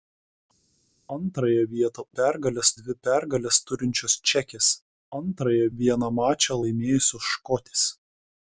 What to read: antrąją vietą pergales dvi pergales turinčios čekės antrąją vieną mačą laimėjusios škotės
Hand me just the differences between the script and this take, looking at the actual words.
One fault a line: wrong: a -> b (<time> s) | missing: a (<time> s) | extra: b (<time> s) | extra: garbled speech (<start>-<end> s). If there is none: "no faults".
no faults